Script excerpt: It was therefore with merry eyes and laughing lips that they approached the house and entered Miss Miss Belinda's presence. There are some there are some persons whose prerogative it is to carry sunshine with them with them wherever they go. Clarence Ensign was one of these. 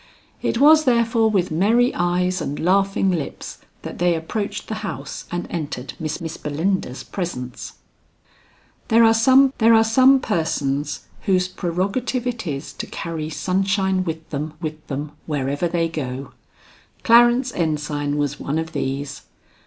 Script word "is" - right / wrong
right